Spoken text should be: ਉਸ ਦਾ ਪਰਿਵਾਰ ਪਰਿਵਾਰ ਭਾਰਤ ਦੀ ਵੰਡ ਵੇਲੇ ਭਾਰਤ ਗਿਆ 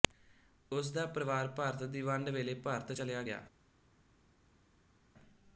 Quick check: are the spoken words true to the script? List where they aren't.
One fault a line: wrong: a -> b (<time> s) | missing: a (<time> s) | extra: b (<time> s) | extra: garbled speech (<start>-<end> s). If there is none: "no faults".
missing: ਪਰਿਵਾਰ (1.5 s)
extra: ਚਲਿਆ (2.9 s)